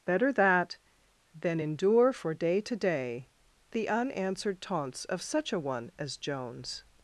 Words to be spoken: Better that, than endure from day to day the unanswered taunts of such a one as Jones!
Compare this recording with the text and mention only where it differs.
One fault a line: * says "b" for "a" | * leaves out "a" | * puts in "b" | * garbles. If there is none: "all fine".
* says "for" for "from"